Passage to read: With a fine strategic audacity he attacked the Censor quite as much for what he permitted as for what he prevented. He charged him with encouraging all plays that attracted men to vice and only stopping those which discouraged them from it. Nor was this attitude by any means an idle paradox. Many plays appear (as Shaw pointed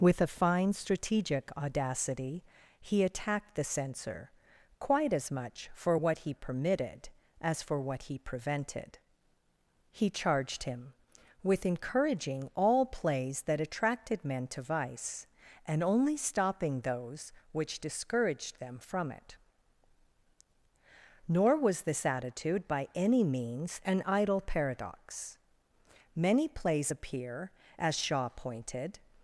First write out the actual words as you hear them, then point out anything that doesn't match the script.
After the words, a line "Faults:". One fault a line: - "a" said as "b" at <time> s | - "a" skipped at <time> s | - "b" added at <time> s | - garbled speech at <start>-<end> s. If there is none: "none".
With a fine strategic audacity he attacked the Censor quite as much for what he permitted as for what he prevented. He charged him with encouraging all plays that attracted men to vice and only stopping those which discouraged them from it. Nor was this attitude by any means an idle paradox. Many plays appear (as Shaw pointed
Faults:
none